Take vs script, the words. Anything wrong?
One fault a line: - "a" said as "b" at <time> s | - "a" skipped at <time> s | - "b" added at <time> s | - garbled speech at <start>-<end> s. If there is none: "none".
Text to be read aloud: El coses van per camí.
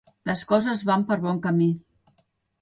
- "El" said as "Les" at 0.3 s
- "bon" added at 1.3 s